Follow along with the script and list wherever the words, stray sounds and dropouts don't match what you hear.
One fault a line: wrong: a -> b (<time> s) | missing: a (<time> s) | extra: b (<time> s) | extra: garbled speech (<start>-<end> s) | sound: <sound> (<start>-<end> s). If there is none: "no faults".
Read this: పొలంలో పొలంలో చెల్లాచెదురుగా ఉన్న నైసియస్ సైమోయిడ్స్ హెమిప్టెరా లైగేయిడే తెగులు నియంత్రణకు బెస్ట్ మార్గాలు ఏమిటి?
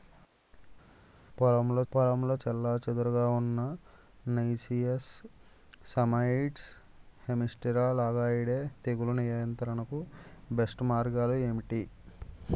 no faults